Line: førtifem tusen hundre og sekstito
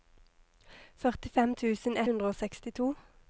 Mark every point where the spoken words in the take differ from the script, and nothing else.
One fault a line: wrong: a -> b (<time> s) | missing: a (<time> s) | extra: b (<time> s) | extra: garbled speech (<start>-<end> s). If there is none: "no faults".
no faults